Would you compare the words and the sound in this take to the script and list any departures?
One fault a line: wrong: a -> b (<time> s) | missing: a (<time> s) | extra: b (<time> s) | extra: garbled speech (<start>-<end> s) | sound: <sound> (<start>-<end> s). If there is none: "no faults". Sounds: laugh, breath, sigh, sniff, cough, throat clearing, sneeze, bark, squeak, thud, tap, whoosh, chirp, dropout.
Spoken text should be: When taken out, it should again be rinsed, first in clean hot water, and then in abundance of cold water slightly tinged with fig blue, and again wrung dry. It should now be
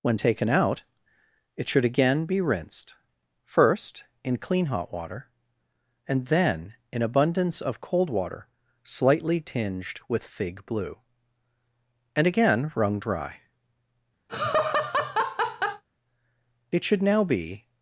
sound: laugh (14.3-15.8 s)